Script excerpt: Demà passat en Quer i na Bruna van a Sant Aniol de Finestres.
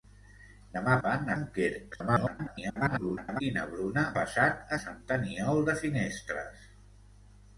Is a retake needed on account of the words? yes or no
yes